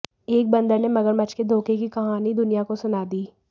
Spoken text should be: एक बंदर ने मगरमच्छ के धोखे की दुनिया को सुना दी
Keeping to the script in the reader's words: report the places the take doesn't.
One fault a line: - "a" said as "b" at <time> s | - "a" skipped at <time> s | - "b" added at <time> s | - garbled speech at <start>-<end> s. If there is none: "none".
- "कहानी" added at 1.9 s